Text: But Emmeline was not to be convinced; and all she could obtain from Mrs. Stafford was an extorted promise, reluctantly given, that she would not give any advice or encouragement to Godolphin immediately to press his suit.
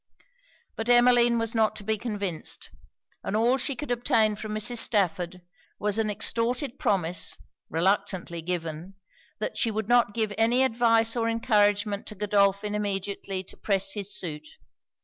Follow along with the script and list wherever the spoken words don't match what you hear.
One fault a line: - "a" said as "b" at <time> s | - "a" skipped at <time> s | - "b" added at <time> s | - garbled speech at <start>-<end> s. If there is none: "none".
none